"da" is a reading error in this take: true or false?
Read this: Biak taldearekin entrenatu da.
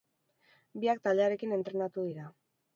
true